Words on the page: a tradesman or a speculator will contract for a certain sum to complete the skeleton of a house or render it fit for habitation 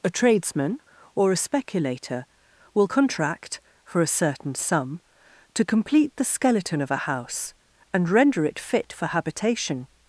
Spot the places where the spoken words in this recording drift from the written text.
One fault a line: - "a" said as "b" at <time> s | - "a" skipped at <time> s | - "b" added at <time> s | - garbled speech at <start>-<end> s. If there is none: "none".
- "or" said as "and" at 7.9 s